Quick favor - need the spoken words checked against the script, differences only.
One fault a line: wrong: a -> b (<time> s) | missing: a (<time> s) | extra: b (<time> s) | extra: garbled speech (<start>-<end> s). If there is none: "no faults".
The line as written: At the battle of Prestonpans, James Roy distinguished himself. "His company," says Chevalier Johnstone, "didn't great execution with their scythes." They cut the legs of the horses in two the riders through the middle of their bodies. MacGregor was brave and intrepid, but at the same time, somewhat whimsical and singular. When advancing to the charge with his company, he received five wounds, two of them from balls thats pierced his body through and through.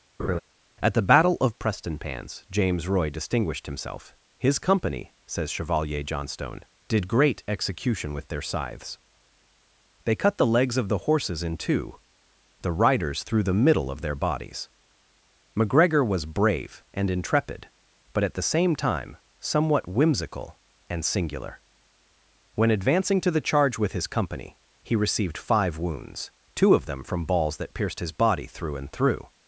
wrong: didn't -> did (6.9 s)
wrong: thats -> that (27.6 s)